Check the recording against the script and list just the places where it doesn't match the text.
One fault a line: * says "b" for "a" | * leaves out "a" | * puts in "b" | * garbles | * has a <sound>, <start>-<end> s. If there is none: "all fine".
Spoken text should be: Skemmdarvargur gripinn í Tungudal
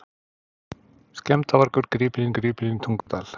* puts in "gripinn"
* has a dropout, 3.0-3.1 s